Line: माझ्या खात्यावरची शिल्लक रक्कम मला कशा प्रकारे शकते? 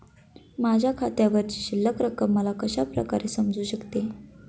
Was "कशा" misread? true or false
false